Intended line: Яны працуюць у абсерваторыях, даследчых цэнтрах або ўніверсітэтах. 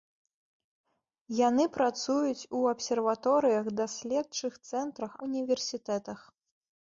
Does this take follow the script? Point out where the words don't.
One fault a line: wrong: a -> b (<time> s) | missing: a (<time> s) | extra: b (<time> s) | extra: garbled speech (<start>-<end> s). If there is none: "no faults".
missing: або (5.1 s)